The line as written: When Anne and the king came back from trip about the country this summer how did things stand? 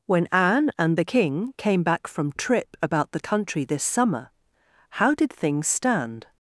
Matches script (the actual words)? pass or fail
pass